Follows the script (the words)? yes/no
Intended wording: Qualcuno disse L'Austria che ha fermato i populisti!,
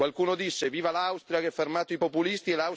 no